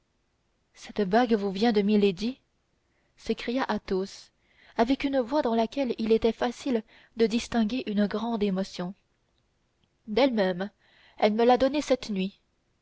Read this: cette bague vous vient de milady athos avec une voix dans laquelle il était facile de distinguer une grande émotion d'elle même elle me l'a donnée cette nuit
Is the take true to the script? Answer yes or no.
no